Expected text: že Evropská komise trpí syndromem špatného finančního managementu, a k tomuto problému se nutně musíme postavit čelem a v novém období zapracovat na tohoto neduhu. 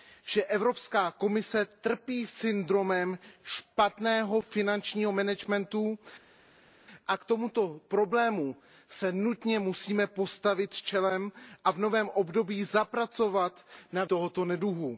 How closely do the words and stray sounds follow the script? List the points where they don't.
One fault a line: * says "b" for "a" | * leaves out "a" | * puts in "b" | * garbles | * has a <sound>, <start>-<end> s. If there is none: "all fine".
all fine